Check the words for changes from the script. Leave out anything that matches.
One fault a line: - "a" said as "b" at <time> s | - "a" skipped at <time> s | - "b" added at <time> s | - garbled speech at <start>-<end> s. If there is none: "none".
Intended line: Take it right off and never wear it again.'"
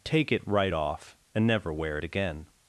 none